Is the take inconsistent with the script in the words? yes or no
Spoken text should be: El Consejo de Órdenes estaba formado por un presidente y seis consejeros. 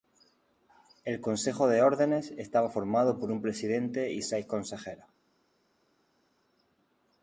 no